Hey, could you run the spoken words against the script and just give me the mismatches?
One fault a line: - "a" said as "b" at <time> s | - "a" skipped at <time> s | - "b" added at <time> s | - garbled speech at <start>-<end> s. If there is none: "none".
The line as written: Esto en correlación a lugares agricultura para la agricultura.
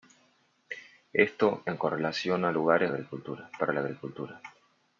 none